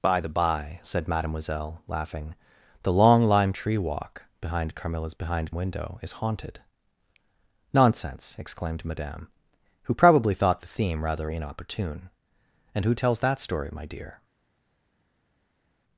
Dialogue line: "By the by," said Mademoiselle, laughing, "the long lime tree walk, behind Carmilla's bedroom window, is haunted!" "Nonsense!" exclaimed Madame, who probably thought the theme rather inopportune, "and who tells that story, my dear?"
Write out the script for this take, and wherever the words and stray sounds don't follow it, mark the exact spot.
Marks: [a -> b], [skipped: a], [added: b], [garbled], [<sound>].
"By the by," said Mademoiselle, laughing, "the long lime tree walk, behind Carmilla's [bedroom -> behind] window, is haunted!" "Nonsense!" exclaimed Madame, who probably thought the theme rather inopportune, "and who tells that story, my dear?"